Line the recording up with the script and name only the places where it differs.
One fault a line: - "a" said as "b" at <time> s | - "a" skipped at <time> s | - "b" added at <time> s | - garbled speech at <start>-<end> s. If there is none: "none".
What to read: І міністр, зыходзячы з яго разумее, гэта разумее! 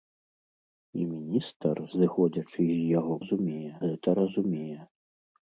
none